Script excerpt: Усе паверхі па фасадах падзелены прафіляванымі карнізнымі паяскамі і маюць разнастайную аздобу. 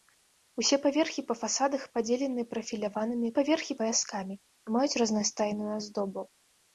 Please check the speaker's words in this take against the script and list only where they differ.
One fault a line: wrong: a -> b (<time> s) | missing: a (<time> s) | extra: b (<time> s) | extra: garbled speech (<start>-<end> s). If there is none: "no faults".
wrong: карнізнымі -> паверхі (3.4 s)